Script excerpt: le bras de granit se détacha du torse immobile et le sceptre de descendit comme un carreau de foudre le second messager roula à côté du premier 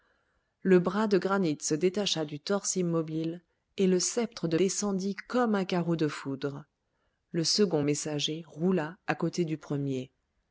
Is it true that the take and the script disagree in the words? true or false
false